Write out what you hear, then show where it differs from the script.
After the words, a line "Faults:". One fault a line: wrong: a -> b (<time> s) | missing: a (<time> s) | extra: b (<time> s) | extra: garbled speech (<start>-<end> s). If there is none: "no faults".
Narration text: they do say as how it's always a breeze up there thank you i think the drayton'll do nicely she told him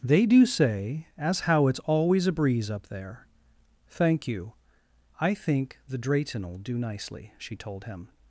they do say as how it's always a breeze up there thank you i think the drayton'll do nicely she told him
Faults:
no faults